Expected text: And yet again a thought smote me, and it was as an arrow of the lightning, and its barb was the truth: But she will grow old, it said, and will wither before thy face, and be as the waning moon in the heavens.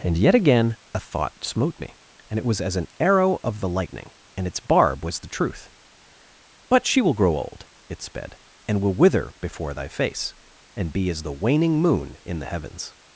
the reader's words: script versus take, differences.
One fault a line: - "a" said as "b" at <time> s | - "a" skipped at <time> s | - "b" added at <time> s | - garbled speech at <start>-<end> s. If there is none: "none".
- "said" said as "sped" at 8.0 s